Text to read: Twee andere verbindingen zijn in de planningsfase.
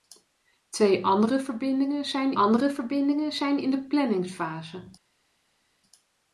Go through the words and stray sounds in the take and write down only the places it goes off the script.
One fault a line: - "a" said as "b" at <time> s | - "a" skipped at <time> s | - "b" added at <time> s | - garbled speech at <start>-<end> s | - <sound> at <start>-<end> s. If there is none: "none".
- "andere verbindingen zijn" added at 2.4 s